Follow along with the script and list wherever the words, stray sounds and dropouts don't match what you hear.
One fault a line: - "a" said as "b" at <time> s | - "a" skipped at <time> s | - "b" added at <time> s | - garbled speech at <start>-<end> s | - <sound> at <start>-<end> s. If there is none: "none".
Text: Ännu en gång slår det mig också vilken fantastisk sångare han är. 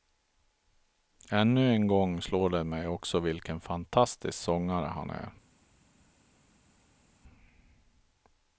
none